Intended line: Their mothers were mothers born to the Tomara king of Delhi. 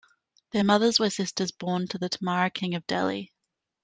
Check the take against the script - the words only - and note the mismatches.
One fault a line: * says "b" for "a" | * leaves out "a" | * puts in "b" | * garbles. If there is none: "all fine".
* says "sisters" for "mothers"